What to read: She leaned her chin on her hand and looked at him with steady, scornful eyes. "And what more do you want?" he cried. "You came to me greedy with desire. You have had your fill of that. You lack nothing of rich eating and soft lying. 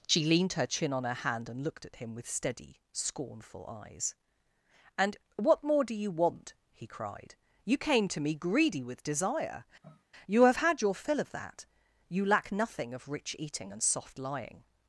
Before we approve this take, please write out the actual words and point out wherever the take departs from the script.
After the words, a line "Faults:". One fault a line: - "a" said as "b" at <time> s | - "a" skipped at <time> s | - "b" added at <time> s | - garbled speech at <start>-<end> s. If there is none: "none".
She leaned her chin on her hand and looked at him with steady, scornful eyes. "And what more do you want?" he cried. "You came to me greedy with desire. You have had your fill of that. You lack nothing of rich eating and soft lying.
Faults:
none